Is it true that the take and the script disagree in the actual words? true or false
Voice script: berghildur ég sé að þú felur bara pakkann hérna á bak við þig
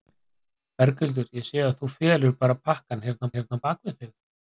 true